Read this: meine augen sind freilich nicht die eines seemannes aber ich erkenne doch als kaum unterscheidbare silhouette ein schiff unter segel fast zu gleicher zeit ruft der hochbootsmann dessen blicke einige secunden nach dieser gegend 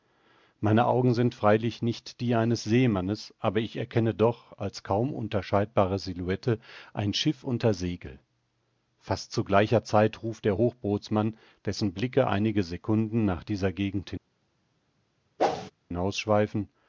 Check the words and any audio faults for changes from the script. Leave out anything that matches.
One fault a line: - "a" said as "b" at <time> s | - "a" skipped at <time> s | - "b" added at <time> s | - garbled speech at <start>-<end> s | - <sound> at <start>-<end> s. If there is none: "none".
- whoosh at 15.4-15.7 s